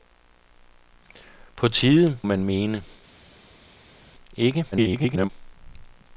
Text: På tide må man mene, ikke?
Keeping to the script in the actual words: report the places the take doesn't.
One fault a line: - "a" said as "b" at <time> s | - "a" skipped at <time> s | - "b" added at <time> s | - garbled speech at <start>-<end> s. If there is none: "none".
- "må" skipped at 2.2 s
- garbled speech at 4.7-5.3 s